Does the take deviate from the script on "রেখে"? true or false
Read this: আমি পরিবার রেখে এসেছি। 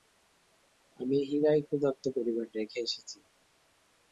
false